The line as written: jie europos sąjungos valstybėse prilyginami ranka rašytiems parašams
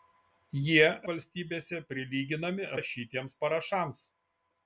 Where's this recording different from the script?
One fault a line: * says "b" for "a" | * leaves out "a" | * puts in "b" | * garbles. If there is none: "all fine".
* leaves out "europos sąjungos"
* leaves out "ranka"